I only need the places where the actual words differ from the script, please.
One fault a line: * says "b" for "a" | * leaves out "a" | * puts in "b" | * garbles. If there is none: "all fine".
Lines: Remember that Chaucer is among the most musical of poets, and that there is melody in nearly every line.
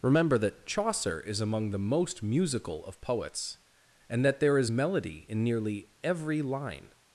all fine